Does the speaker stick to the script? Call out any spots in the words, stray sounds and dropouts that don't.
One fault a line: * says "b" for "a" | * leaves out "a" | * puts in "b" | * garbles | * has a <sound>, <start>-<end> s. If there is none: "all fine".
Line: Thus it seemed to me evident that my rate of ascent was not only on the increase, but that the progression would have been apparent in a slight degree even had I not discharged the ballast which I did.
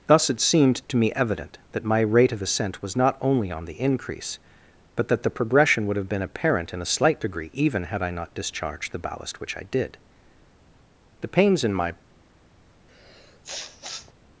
* puts in "The pains in my"
* has a sniff, 12.9-14.1 s